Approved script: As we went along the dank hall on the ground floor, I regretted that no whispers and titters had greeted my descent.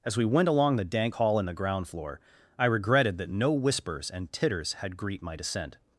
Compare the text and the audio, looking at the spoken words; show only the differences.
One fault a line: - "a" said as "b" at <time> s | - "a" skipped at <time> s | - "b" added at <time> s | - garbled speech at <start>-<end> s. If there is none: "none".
- "on" said as "in" at 1.4 s
- "greeted" said as "greet" at 5.0 s